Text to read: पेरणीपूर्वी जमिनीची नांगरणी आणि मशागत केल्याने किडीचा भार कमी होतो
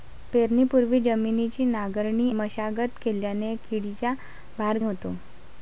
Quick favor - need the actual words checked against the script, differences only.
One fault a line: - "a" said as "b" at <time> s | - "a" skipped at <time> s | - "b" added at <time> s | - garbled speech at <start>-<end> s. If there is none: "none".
- "आणि" skipped at 2.3 s
- "कमी" skipped at 4.8 s